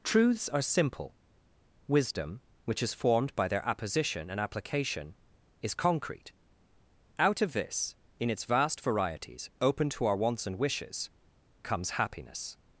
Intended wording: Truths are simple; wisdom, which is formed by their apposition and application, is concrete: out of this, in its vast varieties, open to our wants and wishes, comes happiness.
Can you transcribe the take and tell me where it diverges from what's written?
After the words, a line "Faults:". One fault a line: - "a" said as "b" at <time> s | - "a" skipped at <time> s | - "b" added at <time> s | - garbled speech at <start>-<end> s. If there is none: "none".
Truths are simple; wisdom, which is formed by their apposition and application, is concrete: out of this, in its vast varieties, open to our wants and wishes, comes happiness.
Faults:
none